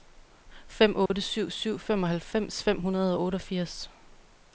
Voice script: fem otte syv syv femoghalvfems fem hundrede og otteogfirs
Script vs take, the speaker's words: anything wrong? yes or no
no